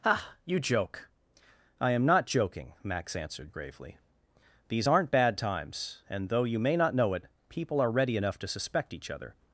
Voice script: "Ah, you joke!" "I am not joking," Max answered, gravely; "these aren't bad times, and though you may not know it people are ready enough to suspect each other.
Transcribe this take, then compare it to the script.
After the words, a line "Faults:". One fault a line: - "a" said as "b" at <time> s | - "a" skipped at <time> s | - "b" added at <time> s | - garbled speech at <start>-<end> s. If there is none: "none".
"Ah, you joke!" "I am not joking," Max answered, gravely; "these aren't bad times, and though you may not know it people are ready enough to suspect each other.
Faults:
none